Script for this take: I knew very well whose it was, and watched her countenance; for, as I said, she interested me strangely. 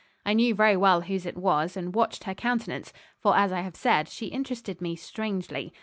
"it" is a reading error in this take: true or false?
false